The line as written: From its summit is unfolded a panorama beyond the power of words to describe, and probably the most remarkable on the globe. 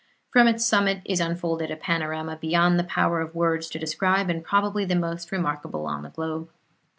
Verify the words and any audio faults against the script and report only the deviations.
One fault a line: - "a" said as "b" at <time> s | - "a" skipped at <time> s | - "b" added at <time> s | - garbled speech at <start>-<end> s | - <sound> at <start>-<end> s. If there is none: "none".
none